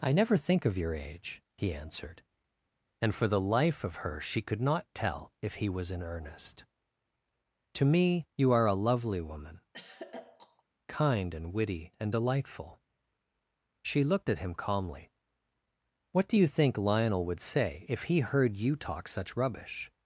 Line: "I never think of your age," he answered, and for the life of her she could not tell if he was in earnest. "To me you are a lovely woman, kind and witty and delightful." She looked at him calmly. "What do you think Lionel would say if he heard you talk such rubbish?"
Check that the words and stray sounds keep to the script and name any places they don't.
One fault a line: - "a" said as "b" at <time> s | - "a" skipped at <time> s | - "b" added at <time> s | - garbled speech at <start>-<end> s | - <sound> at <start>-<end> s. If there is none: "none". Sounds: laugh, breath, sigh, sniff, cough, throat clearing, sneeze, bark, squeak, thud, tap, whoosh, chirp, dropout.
- throat clearing at 9.7-10.6 s